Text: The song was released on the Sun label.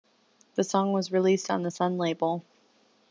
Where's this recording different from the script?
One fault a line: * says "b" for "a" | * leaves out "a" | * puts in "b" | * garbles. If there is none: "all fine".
all fine